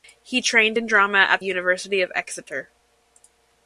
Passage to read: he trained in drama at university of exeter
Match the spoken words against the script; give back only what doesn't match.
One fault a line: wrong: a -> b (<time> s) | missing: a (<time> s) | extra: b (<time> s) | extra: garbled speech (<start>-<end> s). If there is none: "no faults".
no faults